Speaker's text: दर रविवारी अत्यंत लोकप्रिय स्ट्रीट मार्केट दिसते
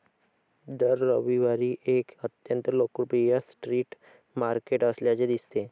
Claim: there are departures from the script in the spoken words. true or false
true